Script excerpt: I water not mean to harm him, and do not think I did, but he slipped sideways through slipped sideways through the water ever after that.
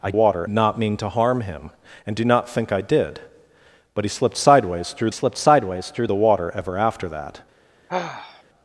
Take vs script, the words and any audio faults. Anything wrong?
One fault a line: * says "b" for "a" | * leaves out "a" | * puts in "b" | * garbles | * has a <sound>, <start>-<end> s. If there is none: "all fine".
* has a sigh, 7.9-8.4 s